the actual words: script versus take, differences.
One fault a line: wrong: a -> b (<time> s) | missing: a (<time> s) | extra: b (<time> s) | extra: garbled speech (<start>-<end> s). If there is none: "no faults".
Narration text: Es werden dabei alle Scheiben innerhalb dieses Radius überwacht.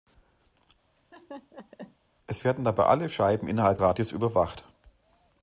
missing: dieses (3.8 s)